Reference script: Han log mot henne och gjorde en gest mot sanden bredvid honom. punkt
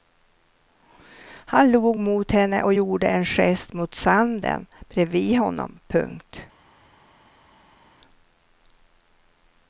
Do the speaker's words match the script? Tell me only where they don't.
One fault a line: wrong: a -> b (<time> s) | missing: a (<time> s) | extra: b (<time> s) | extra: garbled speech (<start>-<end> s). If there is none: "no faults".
no faults